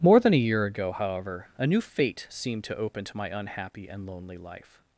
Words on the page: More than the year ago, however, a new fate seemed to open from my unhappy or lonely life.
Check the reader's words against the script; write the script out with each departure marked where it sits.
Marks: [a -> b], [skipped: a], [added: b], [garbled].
More than [the -> a] year ago, however, a new fate seemed to open [from -> to] my unhappy [or -> and] lonely life.